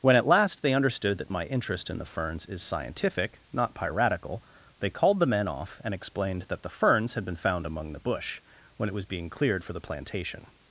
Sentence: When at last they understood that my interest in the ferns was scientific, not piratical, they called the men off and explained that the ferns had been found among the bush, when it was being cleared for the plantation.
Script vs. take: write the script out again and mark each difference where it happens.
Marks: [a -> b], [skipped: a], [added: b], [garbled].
When at last they understood that my interest in the ferns [was -> is] scientific, not piratical, they called the men off and explained that the ferns had been found among the bush, when it was being cleared for the plantation.